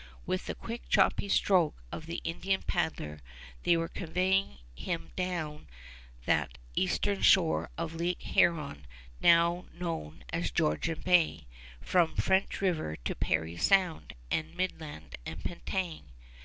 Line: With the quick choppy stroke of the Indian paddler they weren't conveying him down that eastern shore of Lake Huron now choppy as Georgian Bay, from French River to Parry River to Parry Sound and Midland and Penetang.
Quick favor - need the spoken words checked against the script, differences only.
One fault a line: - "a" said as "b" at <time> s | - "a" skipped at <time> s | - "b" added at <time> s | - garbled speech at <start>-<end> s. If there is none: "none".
- "weren't" said as "were" at 3.8 s
- "choppy" said as "known" at 9.7 s
- "River to Parry" skipped at 13.6 s